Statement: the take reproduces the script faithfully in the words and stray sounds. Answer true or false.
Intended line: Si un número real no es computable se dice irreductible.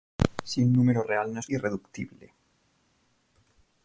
false